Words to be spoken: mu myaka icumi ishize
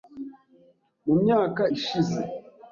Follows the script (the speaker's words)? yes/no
no